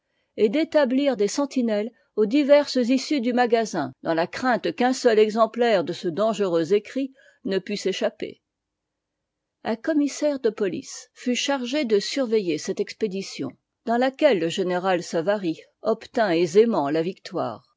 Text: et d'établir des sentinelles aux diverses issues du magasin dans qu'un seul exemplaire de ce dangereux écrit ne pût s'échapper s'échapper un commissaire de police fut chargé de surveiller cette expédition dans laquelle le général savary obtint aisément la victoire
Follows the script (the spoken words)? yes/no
no